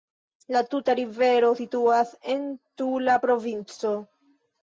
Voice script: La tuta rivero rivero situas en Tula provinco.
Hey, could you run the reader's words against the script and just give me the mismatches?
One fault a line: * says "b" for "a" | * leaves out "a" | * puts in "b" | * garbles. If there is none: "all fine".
* leaves out "rivero"